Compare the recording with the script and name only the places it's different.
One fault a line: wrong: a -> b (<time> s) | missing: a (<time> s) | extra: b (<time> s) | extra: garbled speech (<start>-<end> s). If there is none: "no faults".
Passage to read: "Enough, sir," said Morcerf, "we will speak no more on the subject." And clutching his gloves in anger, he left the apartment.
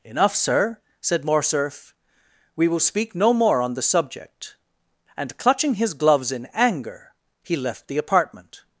no faults